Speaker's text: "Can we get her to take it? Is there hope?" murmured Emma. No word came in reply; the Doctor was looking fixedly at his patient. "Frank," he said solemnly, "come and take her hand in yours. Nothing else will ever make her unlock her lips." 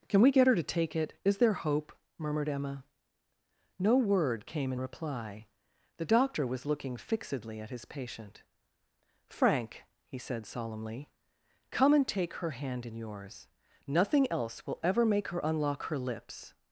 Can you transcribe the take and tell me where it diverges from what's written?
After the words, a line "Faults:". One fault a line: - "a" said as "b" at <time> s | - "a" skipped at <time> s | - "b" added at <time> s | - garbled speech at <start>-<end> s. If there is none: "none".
"Can we get her to take it? Is there hope?" murmured Emma. No word came in reply; the Doctor was looking fixedly at his patient. "Frank," he said solemnly, "come and take her hand in yours. Nothing else will ever make her unlock her lips."
Faults:
none